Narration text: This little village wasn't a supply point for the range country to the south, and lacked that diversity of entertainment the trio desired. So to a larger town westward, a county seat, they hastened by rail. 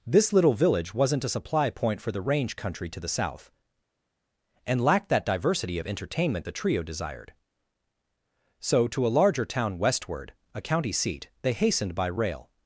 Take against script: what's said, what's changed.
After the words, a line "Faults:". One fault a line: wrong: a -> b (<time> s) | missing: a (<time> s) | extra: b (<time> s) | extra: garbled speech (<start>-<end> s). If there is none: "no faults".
This little village wasn't a supply point for the range country to the south, and lacked that diversity of entertainment the trio desired. So to a larger town westward, a county seat, they hastened by rail.
Faults:
no faults